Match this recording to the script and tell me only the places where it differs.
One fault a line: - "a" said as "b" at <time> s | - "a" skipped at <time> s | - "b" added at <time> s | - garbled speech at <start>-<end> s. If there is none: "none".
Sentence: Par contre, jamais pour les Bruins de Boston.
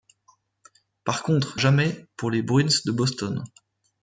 none